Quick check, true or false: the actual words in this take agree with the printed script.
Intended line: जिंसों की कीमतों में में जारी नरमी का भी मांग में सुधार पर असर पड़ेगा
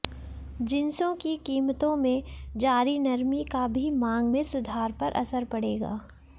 false